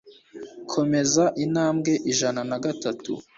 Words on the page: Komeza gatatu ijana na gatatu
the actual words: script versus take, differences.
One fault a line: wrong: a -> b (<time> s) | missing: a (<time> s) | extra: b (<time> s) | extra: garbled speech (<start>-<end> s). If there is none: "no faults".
wrong: gatatu -> intambwe (1.4 s)